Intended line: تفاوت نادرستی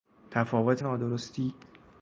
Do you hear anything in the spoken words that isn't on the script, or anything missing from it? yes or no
no